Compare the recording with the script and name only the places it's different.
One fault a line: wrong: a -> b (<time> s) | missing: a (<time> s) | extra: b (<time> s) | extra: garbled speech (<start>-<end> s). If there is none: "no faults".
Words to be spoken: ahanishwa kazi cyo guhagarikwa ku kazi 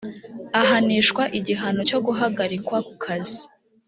wrong: kazi -> igihano (1.4 s)